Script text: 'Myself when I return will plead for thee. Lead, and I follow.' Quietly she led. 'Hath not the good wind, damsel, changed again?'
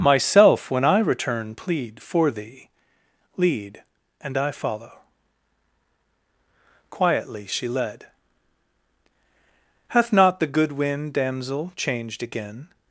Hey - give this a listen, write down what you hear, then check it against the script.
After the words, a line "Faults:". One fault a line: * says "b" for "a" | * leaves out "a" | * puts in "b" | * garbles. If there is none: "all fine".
'Myself when I return plead for thee. Lead, and I follow.' Quietly she led. 'Hath not the good wind, damsel, changed again?'
Faults:
* leaves out "will"